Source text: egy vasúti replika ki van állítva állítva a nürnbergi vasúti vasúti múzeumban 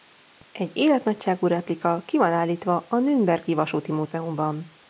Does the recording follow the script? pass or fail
fail